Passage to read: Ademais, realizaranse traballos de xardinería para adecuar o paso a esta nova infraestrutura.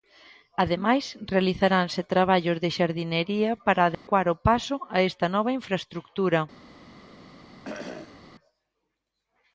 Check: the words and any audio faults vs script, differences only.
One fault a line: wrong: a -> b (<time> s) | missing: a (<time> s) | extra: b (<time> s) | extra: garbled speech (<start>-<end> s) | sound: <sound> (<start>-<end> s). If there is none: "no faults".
sound: dropout (3.9-4.1 s)
sound: cough (7.6-8.2 s)